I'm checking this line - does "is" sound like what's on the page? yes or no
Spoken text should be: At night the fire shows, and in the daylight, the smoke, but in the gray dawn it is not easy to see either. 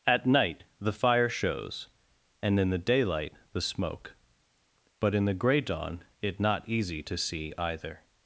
no